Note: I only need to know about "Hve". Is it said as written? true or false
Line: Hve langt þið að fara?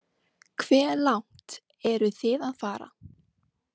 true